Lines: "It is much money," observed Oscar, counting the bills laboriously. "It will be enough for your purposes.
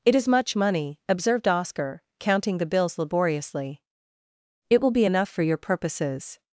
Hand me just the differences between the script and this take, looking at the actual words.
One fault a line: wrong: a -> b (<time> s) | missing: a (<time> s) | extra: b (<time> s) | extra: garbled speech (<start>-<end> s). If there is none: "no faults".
no faults